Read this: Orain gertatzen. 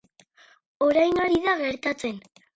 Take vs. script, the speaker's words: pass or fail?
fail